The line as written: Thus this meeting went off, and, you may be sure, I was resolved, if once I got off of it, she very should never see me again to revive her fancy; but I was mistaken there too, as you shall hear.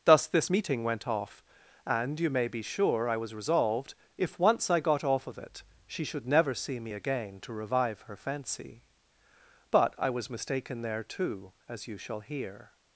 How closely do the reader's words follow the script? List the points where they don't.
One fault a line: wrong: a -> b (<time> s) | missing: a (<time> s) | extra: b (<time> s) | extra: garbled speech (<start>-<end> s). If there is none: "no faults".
missing: very (6.0 s)